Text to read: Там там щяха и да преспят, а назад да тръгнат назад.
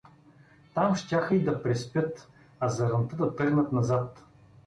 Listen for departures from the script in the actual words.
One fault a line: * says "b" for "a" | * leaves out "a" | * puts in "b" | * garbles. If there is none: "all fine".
* leaves out "там"
* says "заранта" for "назад"